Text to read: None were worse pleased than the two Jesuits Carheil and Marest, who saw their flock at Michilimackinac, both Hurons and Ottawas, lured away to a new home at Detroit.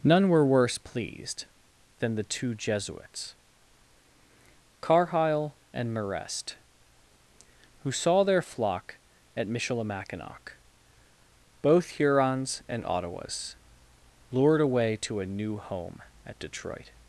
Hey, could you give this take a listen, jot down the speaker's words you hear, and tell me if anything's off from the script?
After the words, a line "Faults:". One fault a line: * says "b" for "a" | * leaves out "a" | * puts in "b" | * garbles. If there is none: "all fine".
None were worse pleased than the two Jesuits Carheil and Marest, who saw their flock at Michilimackinac, both Hurons and Ottawas, lured away to a new home at Detroit.
Faults:
all fine